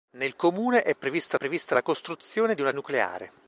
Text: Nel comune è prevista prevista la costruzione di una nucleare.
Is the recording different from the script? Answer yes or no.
no